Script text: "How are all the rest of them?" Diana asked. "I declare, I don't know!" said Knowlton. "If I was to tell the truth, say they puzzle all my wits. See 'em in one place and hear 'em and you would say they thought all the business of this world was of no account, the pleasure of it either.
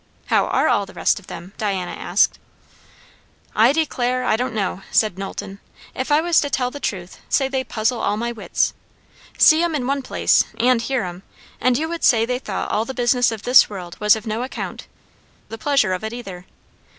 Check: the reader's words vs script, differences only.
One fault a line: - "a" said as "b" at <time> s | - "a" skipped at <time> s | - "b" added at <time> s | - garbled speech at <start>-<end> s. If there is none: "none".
none